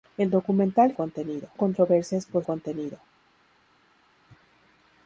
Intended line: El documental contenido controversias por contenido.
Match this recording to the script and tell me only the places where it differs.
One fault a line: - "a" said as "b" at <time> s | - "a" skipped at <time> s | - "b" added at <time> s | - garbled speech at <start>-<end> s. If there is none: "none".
none